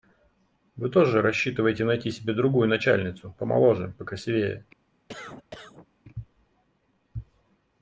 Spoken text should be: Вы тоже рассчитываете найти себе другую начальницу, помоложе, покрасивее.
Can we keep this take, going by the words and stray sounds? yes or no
no